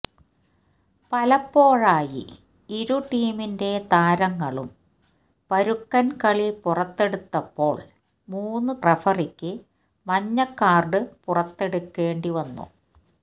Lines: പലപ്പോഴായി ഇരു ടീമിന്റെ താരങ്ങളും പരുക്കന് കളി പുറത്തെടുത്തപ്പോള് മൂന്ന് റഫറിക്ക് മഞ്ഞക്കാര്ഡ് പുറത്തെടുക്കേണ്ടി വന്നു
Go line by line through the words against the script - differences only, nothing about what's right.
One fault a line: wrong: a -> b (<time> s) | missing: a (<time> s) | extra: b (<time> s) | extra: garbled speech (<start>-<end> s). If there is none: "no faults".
no faults